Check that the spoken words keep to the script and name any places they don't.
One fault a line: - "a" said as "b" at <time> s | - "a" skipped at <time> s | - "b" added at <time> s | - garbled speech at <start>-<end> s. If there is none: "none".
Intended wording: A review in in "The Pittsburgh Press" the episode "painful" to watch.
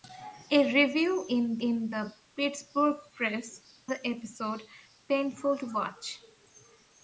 none